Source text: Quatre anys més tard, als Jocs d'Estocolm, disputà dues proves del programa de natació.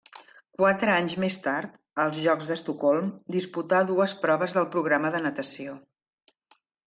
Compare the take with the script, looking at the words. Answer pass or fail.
pass